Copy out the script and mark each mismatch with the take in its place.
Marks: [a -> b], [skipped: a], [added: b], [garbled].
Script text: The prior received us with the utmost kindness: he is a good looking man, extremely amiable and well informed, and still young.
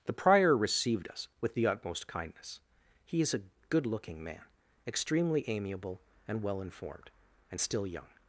The prior received us with the utmost kindness: he is a good looking man, extremely amiable and well informed, and still young.